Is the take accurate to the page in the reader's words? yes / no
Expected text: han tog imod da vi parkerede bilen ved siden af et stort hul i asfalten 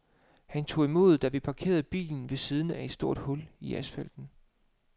yes